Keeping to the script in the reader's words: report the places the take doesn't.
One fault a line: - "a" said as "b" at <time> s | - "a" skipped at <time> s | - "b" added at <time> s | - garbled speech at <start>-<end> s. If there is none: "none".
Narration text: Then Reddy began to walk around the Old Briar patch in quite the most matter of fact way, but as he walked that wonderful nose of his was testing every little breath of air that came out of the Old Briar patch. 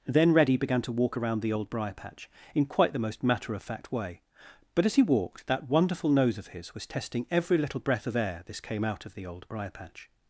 - "that" said as "this" at 8.5 s